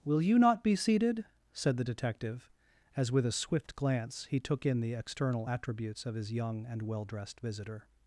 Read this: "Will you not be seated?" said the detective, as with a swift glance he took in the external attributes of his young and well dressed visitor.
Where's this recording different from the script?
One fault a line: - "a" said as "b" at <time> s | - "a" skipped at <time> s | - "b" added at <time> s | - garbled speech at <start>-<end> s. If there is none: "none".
none